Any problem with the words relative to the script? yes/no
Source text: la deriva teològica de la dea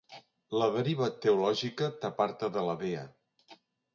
yes